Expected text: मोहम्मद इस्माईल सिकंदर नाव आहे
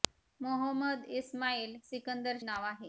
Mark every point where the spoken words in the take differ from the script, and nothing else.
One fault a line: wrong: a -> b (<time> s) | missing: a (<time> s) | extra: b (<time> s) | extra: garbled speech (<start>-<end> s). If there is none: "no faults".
no faults